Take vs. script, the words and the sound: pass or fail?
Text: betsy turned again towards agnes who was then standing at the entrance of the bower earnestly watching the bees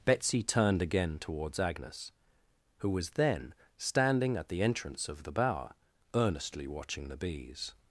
pass